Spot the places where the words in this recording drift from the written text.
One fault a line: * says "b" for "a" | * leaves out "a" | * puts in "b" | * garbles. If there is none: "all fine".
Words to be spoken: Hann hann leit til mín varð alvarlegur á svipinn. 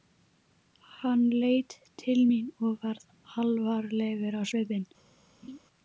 * leaves out "hann"
* puts in "og"